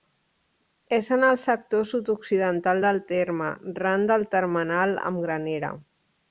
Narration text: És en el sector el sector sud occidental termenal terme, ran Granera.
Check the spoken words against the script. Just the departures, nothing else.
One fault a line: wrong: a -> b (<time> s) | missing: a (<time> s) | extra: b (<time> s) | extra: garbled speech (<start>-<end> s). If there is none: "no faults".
missing: el sector (1.9 s)
wrong: termenal -> del (2.9 s)
extra: del termenal amb (4.1 s)